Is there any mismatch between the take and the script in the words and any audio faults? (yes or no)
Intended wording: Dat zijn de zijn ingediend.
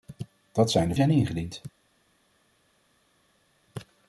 no